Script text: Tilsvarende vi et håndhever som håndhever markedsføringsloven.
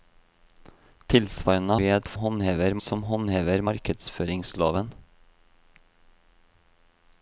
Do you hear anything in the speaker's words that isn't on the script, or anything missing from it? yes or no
no